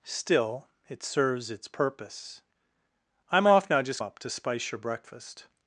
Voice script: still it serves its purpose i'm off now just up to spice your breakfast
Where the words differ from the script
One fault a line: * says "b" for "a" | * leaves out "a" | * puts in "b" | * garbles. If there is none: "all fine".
all fine